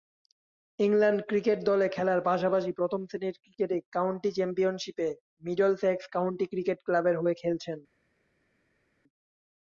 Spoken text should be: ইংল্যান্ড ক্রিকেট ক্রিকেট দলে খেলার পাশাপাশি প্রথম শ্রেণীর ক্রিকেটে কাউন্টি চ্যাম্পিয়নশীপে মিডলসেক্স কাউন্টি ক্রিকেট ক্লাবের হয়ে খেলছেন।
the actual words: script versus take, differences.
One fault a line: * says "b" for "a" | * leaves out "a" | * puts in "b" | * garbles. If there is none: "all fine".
* leaves out "ক্রিকেট"